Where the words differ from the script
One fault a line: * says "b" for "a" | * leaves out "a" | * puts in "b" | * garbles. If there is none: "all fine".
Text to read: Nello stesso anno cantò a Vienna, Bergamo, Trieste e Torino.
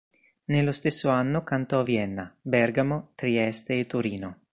all fine